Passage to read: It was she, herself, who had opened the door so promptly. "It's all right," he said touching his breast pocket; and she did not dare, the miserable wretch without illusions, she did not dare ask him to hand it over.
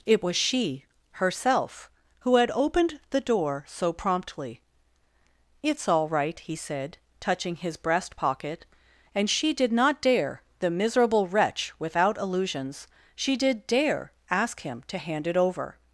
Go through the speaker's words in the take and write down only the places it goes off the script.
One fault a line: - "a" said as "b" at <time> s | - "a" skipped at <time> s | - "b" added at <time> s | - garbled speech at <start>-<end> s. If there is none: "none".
- "not" skipped at 13.7 s